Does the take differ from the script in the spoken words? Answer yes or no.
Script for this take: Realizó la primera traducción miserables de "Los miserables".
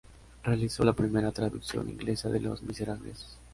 yes